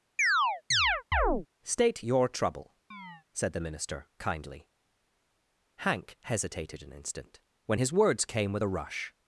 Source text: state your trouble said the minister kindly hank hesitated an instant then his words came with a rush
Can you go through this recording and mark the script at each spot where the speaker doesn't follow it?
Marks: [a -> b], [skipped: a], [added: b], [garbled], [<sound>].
[chirp] state your trouble [chirp] said the minister kindly hank hesitated an instant [then -> when] his words came with a rush